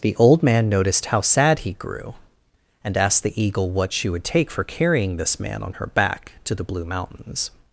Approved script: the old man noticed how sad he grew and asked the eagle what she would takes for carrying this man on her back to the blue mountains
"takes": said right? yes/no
no